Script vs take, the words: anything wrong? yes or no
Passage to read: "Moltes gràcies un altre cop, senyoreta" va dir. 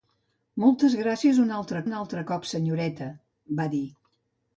yes